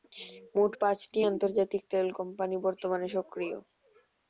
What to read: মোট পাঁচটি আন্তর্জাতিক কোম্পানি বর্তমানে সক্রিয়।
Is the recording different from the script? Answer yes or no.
yes